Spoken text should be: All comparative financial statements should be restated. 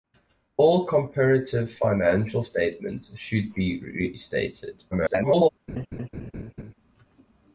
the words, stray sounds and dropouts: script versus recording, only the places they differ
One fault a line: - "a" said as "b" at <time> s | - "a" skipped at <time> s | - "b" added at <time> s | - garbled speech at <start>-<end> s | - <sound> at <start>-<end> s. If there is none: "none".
- garbled speech at 4.9-5.5 s
- laugh at 5.7-6.7 s